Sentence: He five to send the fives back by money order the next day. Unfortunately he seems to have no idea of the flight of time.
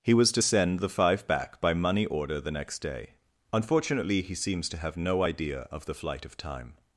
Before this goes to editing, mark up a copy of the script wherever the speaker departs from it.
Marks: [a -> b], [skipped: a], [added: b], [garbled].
He [five -> was] to send the [fives -> five] back by money order the next day. Unfortunately he seems to have no idea of the flight of time.